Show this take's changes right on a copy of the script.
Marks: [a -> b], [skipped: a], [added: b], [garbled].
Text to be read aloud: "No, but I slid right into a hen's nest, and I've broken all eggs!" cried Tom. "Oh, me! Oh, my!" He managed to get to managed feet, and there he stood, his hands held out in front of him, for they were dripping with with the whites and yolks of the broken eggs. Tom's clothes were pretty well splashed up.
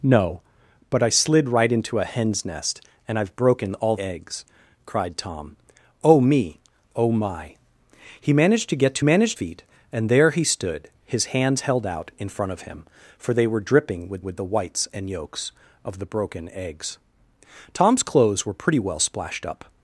"No, but I slid right into a hen's nest, and I've broken all eggs!" cried Tom. "Oh, me! Oh, my!" He managed to get to managed feet, and there he stood, his hands held out in front of him, for they were dripping with with the whites and yolks of the broken eggs. Tom's clothes were pretty well splashed up.